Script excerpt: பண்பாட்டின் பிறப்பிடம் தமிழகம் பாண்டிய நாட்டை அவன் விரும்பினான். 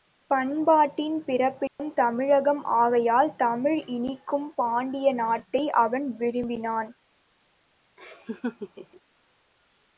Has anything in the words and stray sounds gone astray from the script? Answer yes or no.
yes